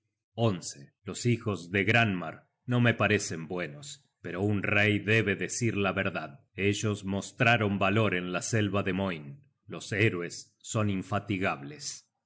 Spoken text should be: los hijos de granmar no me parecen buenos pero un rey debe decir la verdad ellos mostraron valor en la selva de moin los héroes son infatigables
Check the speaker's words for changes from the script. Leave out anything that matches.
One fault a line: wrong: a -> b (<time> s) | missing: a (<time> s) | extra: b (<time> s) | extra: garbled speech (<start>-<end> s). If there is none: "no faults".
no faults